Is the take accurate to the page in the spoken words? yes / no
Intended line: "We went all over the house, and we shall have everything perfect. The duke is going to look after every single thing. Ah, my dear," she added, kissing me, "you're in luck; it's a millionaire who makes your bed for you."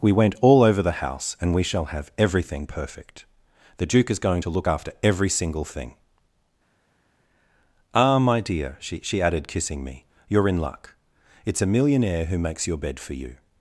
no